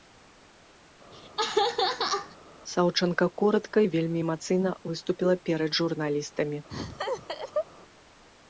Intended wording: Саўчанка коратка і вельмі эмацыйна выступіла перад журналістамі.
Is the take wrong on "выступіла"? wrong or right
right